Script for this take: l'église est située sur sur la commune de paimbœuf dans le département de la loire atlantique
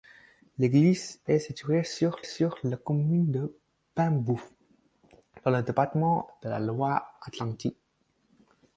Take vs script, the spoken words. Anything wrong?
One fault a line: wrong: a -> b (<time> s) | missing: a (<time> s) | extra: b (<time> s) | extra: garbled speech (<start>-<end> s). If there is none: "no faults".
no faults